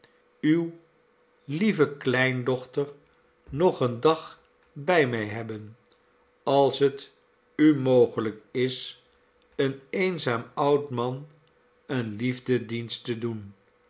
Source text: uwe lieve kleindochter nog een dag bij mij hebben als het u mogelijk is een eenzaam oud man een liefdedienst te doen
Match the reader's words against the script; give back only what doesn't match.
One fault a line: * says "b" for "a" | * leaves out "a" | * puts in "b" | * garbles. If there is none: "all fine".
all fine